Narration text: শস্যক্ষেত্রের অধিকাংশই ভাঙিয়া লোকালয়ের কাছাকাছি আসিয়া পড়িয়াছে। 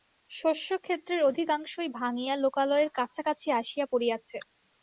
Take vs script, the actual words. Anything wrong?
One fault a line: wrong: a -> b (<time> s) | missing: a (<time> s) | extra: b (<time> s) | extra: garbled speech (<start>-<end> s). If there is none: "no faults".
no faults